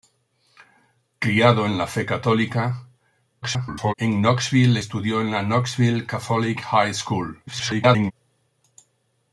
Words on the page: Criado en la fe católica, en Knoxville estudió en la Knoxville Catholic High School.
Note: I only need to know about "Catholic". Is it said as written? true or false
true